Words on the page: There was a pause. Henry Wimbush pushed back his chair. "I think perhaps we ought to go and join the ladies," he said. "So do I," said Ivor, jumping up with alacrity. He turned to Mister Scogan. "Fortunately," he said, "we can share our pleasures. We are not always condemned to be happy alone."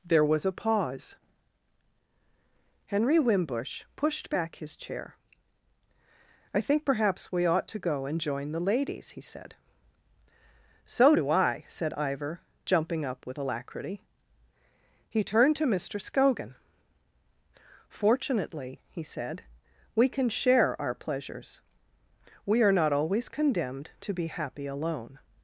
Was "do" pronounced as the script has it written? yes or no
yes